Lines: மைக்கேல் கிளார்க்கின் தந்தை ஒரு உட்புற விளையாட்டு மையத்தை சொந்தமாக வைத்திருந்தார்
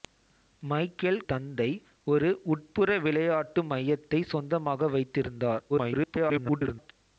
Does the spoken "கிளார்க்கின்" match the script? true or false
false